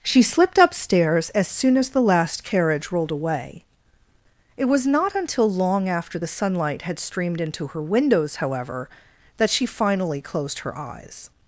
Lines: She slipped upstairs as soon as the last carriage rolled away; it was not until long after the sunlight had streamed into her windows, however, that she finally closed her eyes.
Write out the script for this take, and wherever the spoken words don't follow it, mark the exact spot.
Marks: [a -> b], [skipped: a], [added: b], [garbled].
She slipped upstairs as soon as the last carriage rolled away; it was not until long after the sunlight had streamed into her windows, however, that she finally closed her eyes.